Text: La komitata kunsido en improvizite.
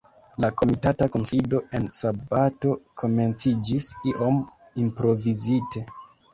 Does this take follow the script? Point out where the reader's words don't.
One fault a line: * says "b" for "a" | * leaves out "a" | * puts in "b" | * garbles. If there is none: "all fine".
* puts in "sabato komenciĝis iom"